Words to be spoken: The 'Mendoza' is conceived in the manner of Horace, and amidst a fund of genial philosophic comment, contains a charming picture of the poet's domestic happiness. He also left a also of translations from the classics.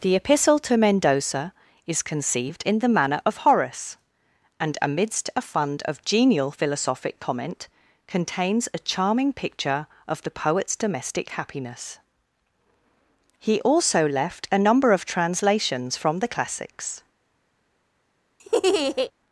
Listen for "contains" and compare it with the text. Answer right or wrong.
right